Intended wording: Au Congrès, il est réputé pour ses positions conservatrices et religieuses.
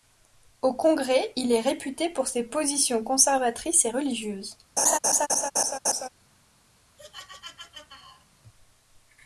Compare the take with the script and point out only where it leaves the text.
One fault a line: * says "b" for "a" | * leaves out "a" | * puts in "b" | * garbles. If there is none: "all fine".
all fine